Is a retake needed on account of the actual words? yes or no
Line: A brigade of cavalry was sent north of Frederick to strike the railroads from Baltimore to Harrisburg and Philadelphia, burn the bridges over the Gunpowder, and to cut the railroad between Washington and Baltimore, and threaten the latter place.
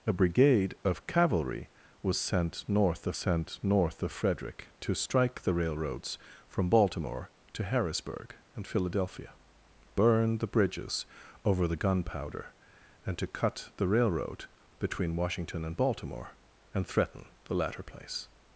yes